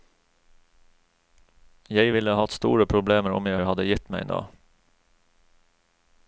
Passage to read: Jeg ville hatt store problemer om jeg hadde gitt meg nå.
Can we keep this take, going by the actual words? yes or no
no